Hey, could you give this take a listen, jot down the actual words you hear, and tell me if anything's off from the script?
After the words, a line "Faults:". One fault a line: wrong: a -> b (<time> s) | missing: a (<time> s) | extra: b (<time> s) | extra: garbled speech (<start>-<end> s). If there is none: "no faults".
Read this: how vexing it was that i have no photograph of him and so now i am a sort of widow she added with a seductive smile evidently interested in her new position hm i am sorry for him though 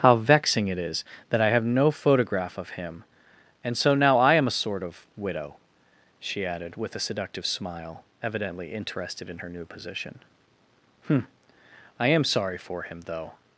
how vexing it is that i have no photograph of him and so now i am a sort of widow she added with a seductive smile evidently interested in her new position hm i am sorry for him though
Faults:
wrong: was -> is (0.8 s)